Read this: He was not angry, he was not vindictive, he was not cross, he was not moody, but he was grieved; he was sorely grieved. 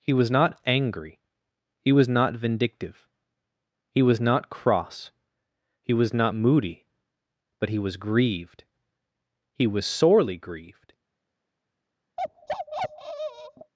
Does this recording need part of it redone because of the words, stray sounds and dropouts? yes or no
yes